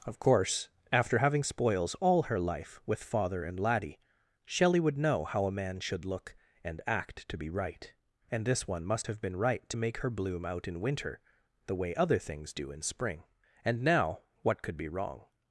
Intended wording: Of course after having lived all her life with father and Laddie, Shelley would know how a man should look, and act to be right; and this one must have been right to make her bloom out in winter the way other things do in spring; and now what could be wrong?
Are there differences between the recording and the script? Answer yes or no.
yes